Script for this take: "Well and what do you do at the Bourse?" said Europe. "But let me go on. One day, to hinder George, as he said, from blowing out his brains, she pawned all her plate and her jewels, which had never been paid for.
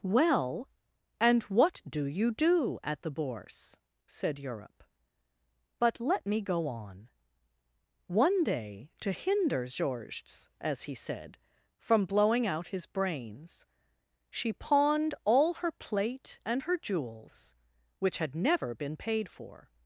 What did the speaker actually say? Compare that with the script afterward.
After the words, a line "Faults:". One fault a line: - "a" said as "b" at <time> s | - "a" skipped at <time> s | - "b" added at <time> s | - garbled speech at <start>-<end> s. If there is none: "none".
"Well and what do you do at the Bourse?" said Europe. "But let me go on. One day, to hinder Georges, as he said, from blowing out his brains, she pawned all her plate and her jewels, which had never been paid for.
Faults:
- "George" said as "Georges" at 9.7 s